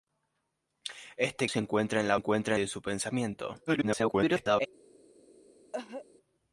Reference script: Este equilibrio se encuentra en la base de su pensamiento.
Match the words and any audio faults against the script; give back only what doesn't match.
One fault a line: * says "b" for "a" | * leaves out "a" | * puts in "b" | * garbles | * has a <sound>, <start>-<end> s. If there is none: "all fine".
* leaves out "equilibrio"
* says "encuentra" for "base"
* garbles
* has a cough, 5.7-6.1 s